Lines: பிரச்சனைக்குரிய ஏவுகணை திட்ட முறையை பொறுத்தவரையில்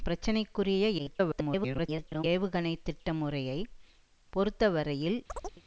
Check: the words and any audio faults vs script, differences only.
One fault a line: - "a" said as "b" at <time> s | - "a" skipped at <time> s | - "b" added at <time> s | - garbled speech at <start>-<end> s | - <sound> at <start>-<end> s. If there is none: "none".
- garbled speech at 1.0-2.2 s
- chirp at 5.3-5.6 s